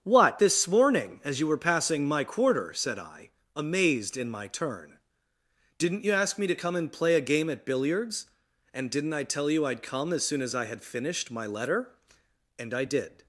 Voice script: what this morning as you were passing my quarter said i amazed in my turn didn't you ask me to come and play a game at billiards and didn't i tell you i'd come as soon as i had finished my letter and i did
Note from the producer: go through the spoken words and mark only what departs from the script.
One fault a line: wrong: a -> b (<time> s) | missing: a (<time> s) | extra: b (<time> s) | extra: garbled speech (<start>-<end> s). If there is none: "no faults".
no faults